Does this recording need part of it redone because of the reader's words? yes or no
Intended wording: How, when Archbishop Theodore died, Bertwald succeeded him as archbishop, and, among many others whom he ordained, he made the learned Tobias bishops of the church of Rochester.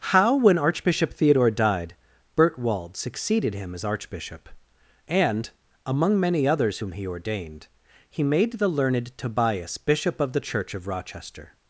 yes